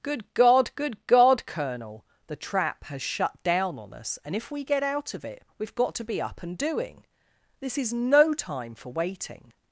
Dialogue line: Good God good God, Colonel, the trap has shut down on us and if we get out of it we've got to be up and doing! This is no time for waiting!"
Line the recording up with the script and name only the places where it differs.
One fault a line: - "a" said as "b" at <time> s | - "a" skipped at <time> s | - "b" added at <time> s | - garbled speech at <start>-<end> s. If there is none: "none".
none